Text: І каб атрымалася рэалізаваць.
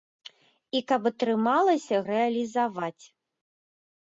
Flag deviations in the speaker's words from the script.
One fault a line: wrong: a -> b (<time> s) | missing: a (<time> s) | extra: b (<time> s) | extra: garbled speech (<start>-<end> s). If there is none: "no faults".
no faults